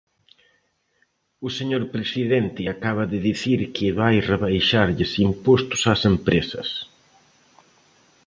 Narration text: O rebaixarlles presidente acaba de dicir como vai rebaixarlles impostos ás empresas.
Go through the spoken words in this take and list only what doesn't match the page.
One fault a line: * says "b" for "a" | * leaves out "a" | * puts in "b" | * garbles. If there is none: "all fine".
* says "señor" for "rebaixarlles"
* says "que" for "como"